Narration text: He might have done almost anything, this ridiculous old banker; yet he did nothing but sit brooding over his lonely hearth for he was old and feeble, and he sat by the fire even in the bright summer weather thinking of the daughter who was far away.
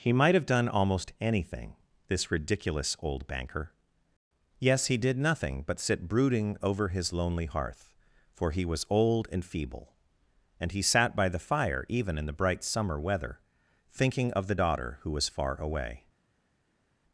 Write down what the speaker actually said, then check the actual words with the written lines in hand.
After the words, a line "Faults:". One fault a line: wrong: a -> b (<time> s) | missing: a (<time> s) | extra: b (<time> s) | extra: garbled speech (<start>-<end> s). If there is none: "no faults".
He might have done almost anything, this ridiculous old banker; yes he did nothing but sit brooding over his lonely hearth for he was old and feeble, and he sat by the fire even in the bright summer weather thinking of the daughter who was far away.
Faults:
wrong: yet -> yes (4.6 s)